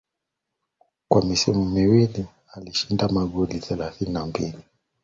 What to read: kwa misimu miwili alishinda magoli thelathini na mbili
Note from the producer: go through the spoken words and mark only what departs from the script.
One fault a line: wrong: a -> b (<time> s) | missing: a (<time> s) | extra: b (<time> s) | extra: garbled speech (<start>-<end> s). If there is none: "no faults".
no faults